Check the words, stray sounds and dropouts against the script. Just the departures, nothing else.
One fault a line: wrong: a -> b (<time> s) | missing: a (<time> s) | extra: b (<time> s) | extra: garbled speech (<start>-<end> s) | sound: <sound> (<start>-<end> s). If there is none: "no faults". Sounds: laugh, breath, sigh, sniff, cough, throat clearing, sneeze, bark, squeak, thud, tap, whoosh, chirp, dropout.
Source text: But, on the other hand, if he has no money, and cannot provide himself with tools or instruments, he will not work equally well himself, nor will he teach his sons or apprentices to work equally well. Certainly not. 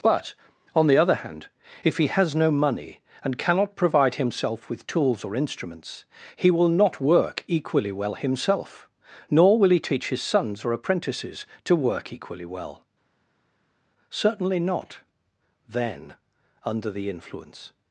extra: Then under the influence (15.7 s)